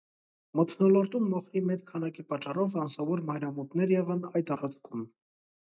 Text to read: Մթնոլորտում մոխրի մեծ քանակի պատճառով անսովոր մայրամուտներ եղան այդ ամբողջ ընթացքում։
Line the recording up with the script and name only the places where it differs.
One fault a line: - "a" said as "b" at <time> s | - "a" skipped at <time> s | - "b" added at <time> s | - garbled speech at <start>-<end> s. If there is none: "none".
- "ամբողջ" skipped at 4.5 s